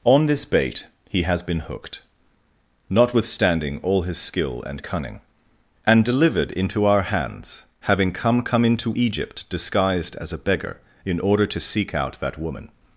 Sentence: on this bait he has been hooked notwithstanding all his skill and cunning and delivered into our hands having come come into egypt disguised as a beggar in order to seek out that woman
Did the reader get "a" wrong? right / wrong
right